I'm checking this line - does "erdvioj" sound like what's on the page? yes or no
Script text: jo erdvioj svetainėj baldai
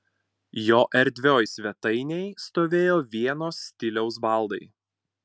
yes